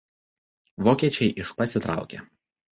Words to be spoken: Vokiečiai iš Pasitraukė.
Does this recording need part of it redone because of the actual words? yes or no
no